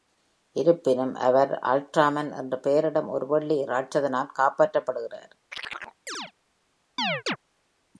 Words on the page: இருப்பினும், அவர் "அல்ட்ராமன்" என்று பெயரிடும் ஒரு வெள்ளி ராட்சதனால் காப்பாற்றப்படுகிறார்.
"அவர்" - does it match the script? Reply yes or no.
yes